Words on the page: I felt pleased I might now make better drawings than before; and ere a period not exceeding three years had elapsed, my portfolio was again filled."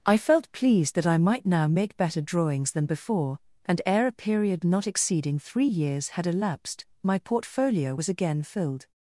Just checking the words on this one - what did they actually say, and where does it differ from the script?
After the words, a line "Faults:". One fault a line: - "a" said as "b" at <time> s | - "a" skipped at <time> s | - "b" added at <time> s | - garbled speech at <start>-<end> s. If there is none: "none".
I felt pleased that I might now make better drawings than before; and ere a period not exceeding three years had elapsed, my portfolio was again filled."
Faults:
- "that" added at 0.9 s